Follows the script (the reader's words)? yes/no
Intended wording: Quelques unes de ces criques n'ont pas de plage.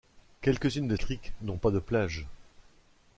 no